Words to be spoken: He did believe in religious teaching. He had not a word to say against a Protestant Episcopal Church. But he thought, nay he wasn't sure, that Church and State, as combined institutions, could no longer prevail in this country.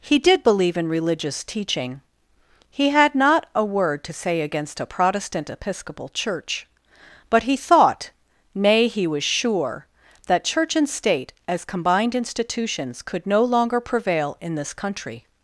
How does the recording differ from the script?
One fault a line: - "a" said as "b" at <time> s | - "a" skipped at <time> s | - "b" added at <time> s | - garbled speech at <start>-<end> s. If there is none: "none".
- "wasn't" said as "was" at 9.1 s